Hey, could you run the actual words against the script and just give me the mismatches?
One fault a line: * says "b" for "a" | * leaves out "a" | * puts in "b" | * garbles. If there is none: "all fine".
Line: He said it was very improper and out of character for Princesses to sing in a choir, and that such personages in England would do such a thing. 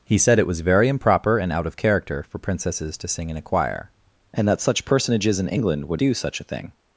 all fine